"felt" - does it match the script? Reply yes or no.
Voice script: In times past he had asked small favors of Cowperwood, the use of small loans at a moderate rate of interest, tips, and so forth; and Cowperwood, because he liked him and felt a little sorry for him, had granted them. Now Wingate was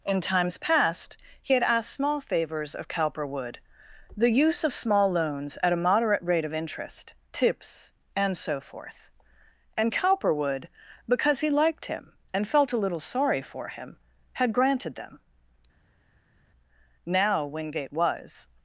yes